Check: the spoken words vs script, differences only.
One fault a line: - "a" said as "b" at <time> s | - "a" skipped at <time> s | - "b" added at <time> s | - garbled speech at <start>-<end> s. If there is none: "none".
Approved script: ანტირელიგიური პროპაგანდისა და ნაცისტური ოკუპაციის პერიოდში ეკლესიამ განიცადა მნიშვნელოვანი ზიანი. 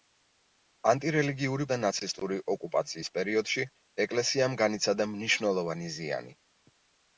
- "პროპაგანდისა" skipped at 1.7 s